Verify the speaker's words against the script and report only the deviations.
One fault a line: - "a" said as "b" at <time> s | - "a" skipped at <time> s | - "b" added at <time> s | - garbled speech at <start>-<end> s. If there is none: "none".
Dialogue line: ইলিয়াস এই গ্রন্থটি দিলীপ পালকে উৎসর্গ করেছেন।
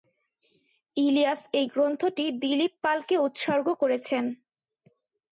none